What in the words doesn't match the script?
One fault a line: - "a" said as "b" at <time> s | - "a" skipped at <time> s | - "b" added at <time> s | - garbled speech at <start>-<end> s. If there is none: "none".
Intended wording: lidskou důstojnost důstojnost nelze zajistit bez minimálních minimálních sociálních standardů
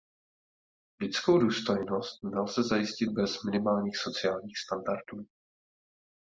- "důstojnost" skipped at 2.2 s
- "minimálních" skipped at 4.0 s